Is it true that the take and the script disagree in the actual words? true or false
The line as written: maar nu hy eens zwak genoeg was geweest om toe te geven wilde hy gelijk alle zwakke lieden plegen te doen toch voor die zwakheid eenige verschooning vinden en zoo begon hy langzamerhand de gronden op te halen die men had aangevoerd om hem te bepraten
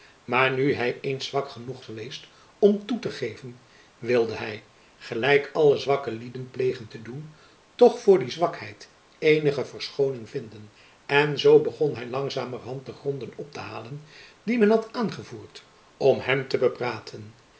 true